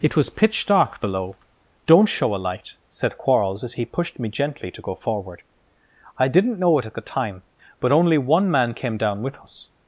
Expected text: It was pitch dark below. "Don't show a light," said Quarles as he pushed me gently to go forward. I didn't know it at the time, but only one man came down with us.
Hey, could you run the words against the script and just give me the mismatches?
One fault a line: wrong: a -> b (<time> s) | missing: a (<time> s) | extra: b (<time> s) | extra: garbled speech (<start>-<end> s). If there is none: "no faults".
no faults